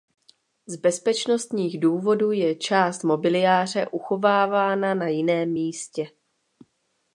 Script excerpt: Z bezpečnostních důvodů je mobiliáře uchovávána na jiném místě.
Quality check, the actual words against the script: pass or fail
fail